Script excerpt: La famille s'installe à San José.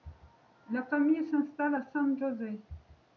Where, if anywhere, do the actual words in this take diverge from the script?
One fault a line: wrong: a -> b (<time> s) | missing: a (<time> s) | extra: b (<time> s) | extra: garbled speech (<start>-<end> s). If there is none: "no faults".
no faults